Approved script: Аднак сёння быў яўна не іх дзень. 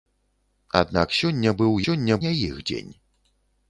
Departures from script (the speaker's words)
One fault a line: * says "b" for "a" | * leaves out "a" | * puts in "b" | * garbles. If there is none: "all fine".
* says "сёння" for "яўна"